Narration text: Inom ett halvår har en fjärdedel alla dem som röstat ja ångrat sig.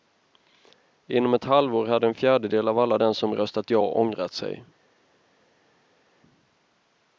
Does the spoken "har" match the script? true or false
false